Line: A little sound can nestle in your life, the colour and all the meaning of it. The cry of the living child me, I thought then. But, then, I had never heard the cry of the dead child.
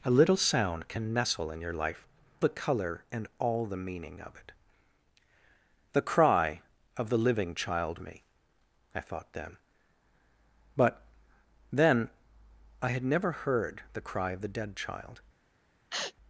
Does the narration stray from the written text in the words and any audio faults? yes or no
yes